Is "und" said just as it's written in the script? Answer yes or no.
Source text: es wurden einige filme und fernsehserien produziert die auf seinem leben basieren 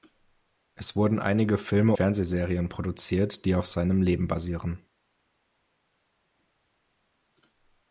no